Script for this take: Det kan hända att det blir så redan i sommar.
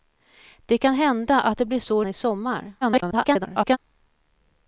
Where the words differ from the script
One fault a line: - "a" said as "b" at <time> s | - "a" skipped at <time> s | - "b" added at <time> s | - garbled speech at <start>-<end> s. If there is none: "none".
- "redan" skipped at 2.0 s
- garbled speech at 2.8-3.8 s